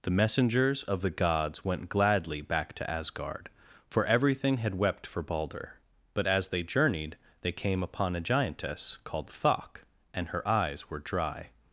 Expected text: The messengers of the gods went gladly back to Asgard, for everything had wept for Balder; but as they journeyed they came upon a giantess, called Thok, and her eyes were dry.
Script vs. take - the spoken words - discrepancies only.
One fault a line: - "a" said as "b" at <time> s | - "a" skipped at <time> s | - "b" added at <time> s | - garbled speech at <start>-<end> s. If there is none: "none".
none